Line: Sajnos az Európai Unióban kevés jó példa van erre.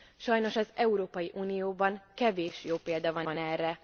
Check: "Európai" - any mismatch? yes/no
no